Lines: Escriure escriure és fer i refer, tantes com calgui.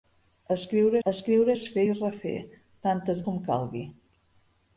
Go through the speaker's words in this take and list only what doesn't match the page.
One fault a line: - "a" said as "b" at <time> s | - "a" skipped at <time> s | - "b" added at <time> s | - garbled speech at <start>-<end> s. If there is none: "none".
none